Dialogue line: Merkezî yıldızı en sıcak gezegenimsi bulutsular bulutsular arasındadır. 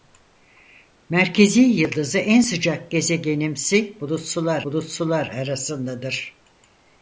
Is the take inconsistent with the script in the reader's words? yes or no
no